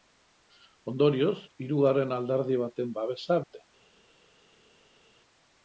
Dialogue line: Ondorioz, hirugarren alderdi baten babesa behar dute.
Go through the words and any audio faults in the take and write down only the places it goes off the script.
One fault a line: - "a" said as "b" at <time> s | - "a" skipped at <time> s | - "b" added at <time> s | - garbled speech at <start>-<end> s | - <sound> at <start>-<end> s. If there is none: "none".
- "behar" skipped at 3.4 s